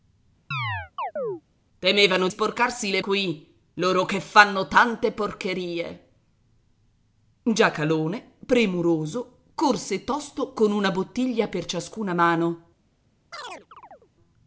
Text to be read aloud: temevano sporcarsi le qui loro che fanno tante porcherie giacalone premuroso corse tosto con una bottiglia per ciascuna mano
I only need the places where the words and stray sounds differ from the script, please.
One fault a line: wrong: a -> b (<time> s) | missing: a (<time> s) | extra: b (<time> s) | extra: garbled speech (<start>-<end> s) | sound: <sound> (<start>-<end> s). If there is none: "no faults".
sound: chirp (0.5-1.4 s)
sound: chirp (13.3-14.1 s)